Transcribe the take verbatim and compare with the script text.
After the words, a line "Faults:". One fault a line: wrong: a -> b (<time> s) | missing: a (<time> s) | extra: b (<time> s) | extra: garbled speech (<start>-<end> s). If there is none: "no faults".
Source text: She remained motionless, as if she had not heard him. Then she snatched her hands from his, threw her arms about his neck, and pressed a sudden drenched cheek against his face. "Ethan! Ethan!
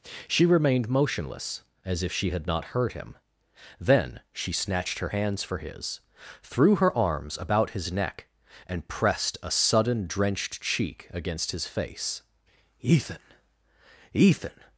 She remained motionless, as if she had not heard him. Then she snatched her hands for his, threw her arms about his neck, and pressed a sudden drenched cheek against his face. "Ethan! Ethan!
Faults:
wrong: from -> for (5.4 s)